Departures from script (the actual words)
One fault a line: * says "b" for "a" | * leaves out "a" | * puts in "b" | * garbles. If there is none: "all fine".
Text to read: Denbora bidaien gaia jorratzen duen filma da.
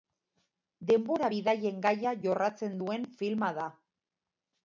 all fine